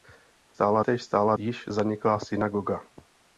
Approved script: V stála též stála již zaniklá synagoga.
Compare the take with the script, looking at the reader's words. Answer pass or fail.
pass